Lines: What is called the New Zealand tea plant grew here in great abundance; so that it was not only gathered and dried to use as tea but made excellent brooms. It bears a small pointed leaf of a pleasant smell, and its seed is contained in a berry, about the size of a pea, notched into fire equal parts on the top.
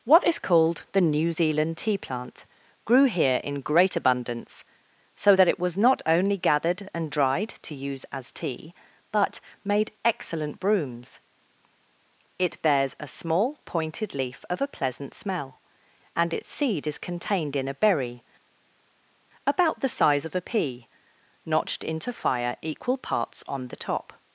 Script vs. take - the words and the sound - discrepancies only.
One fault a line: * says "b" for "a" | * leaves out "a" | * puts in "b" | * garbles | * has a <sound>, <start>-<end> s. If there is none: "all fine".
all fine